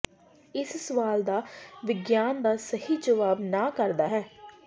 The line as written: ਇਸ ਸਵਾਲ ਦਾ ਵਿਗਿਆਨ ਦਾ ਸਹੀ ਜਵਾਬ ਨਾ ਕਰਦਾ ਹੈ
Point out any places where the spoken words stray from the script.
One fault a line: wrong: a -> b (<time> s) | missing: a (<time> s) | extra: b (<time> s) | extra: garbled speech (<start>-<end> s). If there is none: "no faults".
no faults